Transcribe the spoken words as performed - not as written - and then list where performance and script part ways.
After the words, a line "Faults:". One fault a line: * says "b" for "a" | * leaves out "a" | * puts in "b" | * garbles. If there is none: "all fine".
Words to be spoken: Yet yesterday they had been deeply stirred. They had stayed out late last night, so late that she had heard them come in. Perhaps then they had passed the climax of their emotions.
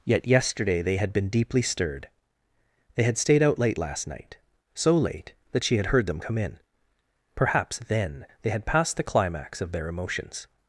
Yet yesterday they had been deeply stirred. They had stayed out late last night, so late that she had heard them come in. Perhaps then they had passed the climax of their emotions.
Faults:
all fine